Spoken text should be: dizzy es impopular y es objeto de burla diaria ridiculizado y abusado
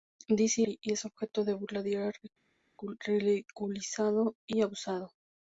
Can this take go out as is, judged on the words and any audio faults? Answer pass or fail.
fail